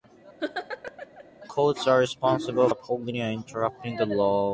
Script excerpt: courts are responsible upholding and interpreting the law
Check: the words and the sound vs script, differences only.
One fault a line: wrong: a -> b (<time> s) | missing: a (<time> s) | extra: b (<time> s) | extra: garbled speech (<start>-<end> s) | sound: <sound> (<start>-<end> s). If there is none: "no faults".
sound: laugh (0.4-1.2 s)